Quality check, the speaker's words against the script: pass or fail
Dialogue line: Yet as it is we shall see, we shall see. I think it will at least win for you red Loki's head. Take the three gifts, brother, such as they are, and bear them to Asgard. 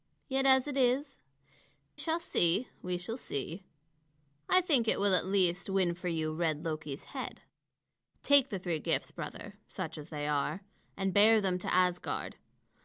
fail